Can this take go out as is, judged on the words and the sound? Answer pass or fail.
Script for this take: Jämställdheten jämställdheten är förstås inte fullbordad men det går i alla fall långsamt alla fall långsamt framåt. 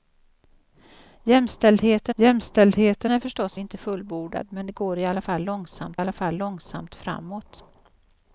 pass